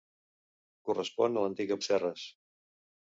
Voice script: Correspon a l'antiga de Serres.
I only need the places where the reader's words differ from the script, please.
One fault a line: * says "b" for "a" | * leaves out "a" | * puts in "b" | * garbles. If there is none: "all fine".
all fine